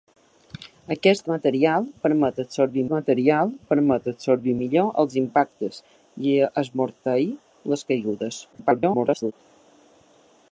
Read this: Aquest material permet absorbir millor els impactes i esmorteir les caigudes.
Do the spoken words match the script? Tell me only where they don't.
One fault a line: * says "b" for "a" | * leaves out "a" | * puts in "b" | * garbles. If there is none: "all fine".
* puts in "material permet absorbir"
* garbles